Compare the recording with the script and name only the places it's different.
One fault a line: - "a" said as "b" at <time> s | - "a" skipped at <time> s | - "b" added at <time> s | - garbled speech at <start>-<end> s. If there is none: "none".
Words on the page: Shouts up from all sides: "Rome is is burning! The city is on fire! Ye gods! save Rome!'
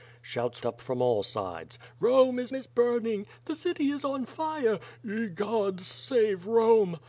none